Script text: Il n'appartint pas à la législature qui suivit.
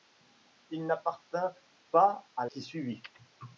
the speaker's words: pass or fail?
fail